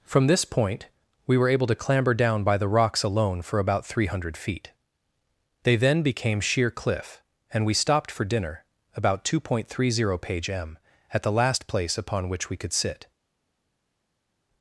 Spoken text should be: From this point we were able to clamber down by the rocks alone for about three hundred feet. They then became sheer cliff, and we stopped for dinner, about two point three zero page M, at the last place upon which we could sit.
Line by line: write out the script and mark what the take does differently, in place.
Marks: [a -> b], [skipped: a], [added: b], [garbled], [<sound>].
From this point we were able to clamber down by the rocks alone for about three hundred feet. They then became sheer cliff, and we stopped for dinner, about two point three zero page M, at the last place upon which we could sit.